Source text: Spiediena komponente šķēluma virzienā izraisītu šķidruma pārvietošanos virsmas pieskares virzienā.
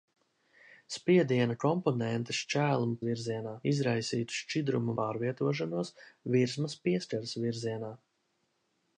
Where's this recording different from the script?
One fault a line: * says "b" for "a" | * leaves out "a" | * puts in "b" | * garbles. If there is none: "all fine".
all fine